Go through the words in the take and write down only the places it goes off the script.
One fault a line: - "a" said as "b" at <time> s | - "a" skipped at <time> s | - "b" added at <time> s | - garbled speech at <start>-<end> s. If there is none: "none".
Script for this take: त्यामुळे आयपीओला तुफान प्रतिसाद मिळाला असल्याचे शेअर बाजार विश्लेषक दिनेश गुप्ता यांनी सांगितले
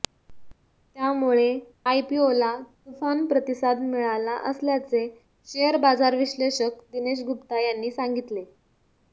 none